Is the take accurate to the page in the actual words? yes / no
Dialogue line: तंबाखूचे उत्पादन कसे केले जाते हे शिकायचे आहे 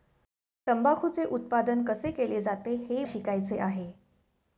yes